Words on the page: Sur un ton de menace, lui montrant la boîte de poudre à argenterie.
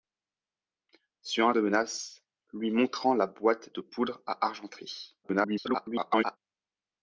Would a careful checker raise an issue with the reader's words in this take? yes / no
yes